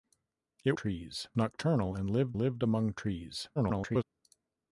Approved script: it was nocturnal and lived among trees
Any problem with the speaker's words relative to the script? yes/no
yes